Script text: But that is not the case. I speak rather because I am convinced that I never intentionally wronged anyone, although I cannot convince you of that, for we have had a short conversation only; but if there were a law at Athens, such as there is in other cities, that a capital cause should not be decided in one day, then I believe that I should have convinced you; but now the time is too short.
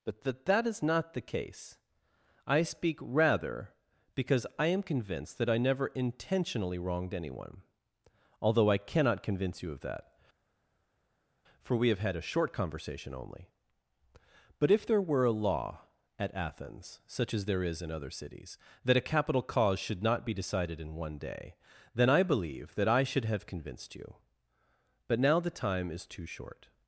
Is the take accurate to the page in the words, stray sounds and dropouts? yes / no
no